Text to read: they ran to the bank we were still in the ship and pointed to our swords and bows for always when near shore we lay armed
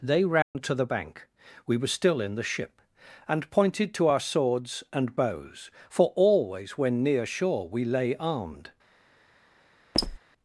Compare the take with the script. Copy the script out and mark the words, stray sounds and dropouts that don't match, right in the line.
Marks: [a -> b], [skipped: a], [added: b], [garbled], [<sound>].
they ran [dropout] to the bank we were still in the ship and pointed to our swords and bows for always when near shore we lay armed [squeak]